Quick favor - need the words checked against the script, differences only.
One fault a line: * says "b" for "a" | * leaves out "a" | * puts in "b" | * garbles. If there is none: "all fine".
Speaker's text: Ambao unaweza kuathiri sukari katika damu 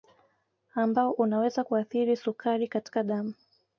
all fine